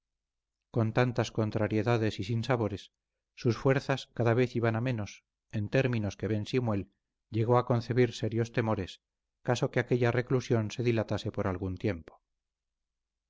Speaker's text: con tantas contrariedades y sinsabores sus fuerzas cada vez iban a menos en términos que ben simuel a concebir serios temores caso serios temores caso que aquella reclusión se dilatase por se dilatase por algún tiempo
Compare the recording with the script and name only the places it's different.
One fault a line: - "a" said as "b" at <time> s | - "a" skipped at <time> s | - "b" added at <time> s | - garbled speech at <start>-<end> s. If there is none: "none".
- "llegó" added at 7.3 s
- "serios temores caso" skipped at 9.7 s
- "se dilatase por" skipped at 11.5 s